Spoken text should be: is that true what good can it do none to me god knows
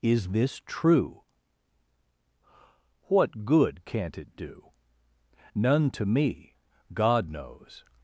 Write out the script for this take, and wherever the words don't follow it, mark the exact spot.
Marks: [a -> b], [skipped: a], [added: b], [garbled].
is [that -> this] true what good [can -> can't] it do none to me god knows